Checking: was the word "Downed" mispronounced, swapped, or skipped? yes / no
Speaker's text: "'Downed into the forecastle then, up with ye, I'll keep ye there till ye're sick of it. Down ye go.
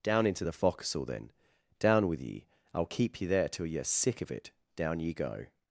yes